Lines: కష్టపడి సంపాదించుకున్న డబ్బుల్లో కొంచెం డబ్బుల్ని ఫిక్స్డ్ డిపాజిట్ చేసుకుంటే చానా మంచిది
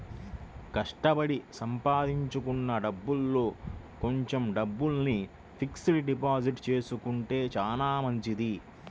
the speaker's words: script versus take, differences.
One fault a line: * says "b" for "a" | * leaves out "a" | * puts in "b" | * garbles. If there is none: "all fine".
all fine